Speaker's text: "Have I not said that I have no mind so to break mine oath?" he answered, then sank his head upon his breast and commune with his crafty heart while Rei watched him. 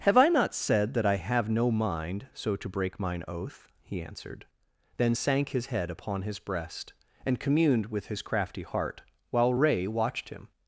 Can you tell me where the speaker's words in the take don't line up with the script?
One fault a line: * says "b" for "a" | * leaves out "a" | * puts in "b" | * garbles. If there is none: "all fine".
* says "communed" for "commune"